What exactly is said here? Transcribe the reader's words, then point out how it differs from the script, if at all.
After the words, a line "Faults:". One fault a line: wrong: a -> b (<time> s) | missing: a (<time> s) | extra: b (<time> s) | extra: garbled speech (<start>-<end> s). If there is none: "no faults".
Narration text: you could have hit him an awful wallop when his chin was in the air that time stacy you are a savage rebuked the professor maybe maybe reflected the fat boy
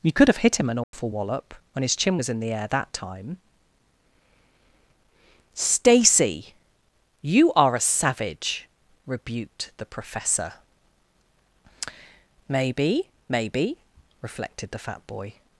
you could have hit him an awful wallop when his chin was in the air that time stacy you are a savage rebuked the professor maybe maybe reflected the fat boy
Faults:
no faults